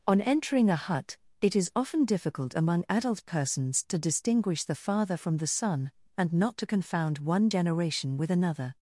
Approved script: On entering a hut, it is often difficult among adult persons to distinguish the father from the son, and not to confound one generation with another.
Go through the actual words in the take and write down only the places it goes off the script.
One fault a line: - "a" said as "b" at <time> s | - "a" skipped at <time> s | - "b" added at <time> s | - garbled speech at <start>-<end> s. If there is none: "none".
none